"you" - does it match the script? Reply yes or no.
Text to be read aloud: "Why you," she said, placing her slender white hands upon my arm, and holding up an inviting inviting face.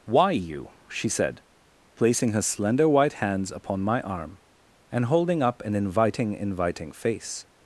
yes